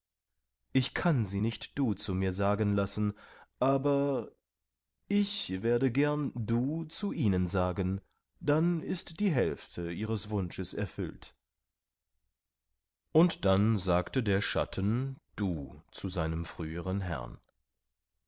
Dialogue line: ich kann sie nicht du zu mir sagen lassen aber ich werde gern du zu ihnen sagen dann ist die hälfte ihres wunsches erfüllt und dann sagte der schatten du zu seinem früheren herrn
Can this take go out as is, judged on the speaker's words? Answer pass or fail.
pass